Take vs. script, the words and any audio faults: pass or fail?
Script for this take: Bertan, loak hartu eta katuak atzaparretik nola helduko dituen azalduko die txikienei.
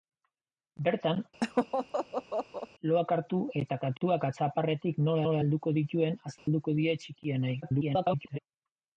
fail